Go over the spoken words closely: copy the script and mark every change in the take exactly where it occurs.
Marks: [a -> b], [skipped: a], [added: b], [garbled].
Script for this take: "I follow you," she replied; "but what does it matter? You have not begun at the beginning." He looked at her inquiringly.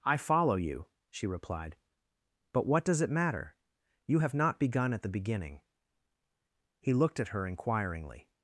"I follow you," she replied; "but what does it matter? You have not begun at the beginning." He looked at her inquiringly.